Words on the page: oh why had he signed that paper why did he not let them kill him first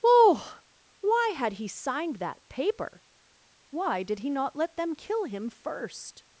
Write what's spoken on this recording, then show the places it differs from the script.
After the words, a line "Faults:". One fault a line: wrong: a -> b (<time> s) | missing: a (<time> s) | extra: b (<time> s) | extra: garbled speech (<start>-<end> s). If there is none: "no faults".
oh why had he signed that paper why did he not let them kill him first
Faults:
no faults